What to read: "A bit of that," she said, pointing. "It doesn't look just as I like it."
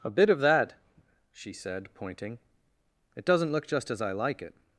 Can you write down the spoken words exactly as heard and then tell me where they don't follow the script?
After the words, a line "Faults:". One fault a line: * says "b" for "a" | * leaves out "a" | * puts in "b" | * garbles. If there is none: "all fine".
"A bit of that," she said, pointing. "It doesn't look just as I like it."
Faults:
all fine